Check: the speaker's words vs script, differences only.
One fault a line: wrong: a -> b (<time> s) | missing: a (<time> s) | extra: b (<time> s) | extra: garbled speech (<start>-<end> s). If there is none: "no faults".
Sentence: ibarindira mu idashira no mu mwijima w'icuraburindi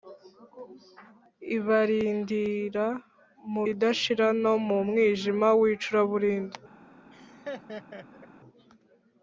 no faults